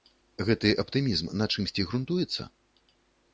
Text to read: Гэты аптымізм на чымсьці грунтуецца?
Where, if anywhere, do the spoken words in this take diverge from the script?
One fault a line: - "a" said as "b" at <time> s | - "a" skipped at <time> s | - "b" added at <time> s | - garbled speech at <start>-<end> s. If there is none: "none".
none